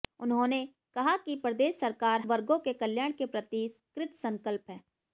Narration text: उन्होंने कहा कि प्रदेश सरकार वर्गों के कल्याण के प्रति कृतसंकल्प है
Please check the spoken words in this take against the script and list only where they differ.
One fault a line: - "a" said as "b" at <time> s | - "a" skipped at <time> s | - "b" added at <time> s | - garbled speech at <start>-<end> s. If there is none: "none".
none